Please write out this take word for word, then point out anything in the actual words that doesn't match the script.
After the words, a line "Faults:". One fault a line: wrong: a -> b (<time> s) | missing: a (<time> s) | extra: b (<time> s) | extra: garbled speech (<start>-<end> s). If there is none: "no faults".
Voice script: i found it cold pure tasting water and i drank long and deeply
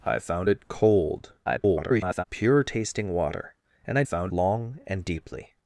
i found it cold [garbled] pure tasting water and i found long and deeply
Faults:
extra: garbled speech (1.4-2.2 s)
wrong: drank -> found (4.0 s)